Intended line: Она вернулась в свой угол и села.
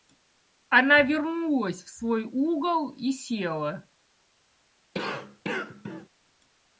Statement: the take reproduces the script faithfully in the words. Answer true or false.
true